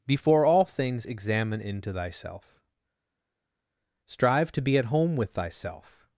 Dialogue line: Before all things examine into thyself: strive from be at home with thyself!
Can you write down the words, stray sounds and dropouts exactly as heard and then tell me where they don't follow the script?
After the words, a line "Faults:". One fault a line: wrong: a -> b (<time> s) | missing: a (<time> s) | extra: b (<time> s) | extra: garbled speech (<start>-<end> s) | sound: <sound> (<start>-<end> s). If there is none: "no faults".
Before all things examine into thyself: strive to be at home with thyself!
Faults:
wrong: from -> to (4.5 s)